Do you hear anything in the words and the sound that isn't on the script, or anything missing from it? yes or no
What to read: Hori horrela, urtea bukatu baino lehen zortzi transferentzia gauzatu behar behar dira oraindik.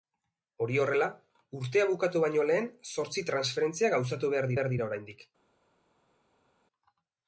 no